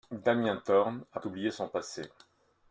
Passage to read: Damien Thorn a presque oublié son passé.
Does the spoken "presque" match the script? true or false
false